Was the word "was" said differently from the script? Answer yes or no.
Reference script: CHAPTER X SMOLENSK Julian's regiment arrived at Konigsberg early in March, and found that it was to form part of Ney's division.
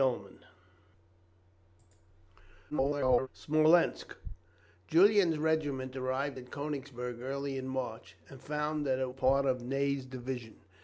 yes